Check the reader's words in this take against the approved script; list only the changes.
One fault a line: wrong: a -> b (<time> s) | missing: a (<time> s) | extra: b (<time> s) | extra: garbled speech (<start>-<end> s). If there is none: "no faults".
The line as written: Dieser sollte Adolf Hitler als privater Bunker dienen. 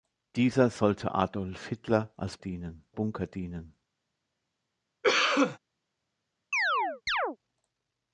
wrong: privater -> dienen (2.4 s)